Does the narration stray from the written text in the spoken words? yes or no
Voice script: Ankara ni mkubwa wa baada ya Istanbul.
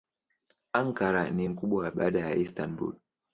no